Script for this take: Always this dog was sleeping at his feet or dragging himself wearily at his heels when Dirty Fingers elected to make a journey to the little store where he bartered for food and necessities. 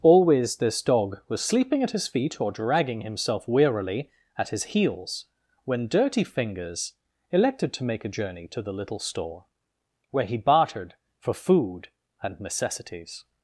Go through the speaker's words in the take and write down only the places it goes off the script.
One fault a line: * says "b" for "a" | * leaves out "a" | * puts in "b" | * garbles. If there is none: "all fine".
all fine